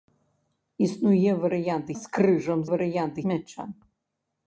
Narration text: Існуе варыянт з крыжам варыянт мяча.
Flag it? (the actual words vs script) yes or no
no